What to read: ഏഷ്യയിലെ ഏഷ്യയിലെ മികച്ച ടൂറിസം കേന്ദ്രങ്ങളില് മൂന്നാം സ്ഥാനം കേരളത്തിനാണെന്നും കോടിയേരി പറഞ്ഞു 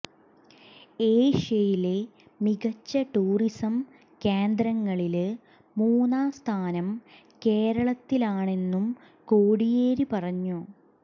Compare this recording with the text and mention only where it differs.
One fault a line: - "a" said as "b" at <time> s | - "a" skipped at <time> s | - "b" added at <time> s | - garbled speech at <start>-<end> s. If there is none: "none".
- "ഏഷ്യയിലെ" skipped at 2.0 s